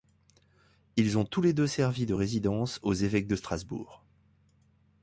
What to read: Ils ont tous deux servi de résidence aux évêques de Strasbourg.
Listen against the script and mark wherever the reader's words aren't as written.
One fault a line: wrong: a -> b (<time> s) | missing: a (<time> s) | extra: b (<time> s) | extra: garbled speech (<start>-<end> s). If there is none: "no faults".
extra: les (1.4 s)